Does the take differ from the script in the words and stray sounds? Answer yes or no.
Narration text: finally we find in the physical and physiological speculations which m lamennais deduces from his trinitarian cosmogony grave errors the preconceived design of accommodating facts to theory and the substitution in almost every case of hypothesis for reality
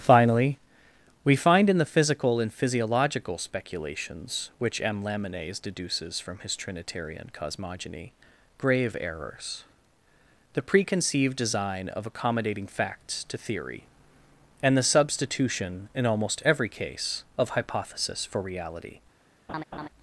yes